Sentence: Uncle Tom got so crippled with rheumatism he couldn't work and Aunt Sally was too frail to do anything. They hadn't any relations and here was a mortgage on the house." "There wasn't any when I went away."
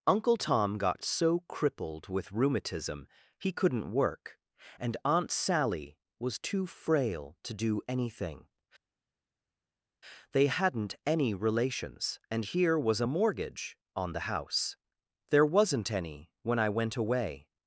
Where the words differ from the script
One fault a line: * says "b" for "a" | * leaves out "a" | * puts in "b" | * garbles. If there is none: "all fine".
all fine